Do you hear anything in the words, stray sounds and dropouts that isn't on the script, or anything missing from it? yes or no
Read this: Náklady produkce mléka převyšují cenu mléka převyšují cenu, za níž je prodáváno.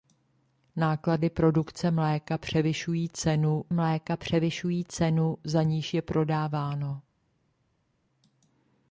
no